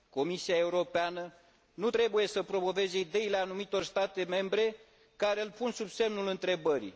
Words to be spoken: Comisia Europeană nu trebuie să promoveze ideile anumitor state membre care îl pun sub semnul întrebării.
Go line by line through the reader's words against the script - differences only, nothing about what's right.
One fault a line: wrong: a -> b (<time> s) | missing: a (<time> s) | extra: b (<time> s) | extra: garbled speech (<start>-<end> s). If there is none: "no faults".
no faults